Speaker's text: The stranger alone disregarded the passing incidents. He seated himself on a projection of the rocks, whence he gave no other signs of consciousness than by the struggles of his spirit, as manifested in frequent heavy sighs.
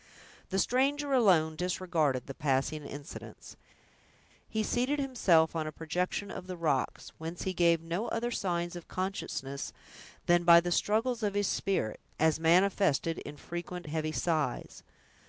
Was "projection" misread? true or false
false